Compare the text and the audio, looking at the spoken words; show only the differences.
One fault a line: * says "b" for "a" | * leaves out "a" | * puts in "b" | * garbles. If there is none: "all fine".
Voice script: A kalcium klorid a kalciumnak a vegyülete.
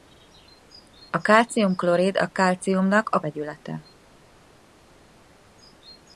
all fine